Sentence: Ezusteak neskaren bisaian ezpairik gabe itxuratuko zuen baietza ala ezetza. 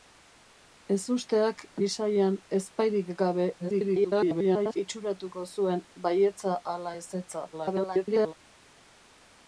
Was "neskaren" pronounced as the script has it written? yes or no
no